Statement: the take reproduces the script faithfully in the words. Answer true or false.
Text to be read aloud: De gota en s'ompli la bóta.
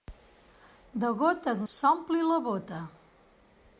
true